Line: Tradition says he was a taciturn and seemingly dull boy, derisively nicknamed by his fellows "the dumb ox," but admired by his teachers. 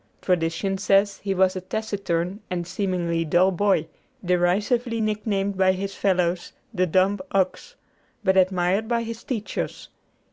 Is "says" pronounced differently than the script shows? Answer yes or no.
no